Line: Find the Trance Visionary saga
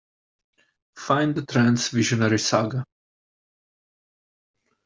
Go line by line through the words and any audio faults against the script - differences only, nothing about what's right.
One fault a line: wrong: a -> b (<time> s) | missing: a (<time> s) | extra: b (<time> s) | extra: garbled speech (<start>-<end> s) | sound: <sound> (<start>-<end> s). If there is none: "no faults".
no faults